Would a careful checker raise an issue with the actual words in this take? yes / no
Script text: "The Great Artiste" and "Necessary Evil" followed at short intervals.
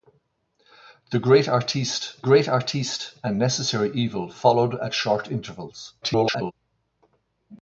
yes